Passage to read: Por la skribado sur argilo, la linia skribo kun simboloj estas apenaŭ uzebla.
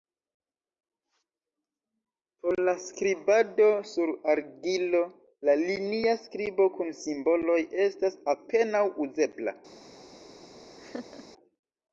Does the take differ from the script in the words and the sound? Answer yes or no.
yes